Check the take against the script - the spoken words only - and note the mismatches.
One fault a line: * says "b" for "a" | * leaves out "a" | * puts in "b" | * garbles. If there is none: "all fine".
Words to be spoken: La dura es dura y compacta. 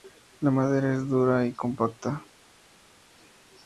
* says "madera" for "dura"